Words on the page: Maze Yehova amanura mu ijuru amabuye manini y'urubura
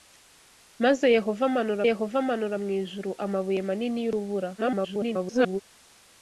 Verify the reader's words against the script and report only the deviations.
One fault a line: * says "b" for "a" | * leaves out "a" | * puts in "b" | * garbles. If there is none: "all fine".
* puts in "Yehova amanura"
* garbles